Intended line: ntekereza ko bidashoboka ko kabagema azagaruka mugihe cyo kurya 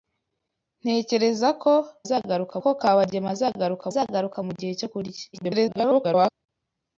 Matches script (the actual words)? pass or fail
fail